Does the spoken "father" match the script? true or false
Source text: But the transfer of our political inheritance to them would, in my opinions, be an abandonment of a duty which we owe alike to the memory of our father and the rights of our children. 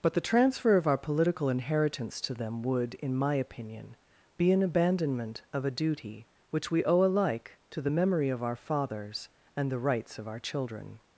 false